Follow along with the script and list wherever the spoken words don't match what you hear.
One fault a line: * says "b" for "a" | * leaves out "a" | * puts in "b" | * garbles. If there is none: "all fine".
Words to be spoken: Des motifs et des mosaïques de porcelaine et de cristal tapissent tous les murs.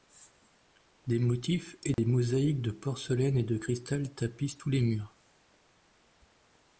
all fine